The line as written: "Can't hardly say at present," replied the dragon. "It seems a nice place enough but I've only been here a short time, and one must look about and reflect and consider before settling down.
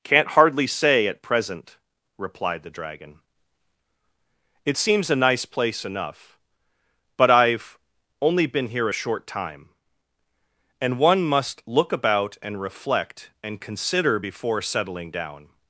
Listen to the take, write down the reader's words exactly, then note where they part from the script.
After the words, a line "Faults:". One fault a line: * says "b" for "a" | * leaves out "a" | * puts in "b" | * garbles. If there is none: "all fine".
"Can't hardly say at present," replied the dragon. "It seems a nice place enough but I've only been here a short time, and one must look about and reflect and consider before settling down.
Faults:
all fine